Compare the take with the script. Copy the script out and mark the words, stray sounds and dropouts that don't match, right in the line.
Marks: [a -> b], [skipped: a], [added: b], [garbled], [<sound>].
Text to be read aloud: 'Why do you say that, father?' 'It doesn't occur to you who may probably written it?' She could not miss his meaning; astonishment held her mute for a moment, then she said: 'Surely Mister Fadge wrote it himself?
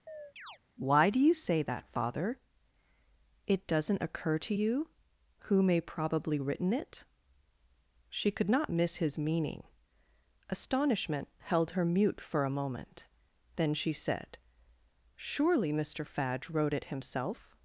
[chirp] 'Why do you say that, father?' 'It doesn't occur to you who may probably written it?' She could not miss his meaning; astonishment held her mute for a moment, then she said: 'Surely Mister Fadge wrote it himself?